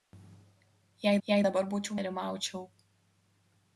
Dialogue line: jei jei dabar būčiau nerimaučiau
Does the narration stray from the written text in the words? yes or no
no